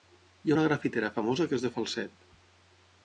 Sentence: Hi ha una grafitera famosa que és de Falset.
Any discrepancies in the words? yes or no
no